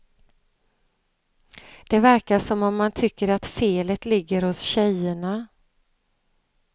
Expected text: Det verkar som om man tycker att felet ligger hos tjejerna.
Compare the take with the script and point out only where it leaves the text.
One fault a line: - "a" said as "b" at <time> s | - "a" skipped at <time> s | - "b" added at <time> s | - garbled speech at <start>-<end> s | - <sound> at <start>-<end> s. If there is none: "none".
none